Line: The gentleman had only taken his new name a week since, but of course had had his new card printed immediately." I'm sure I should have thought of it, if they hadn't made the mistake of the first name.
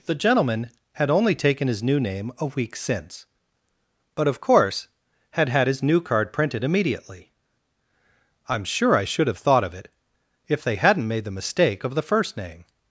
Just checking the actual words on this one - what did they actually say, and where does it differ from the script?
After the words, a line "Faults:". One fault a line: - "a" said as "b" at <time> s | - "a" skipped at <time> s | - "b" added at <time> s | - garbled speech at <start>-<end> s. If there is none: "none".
The gentleman had only taken his new name a week since, but of course had had his new card printed immediately." I'm sure I should have thought of it, if they hadn't made the mistake of the first name.
Faults:
none